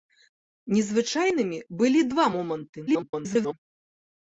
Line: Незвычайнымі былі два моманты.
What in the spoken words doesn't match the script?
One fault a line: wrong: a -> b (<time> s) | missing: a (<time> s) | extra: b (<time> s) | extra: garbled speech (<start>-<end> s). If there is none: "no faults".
extra: garbled speech (2.9-3.5 s)